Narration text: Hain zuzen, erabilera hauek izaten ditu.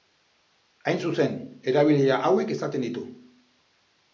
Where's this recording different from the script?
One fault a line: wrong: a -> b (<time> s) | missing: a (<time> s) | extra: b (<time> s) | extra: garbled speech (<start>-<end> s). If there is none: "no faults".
no faults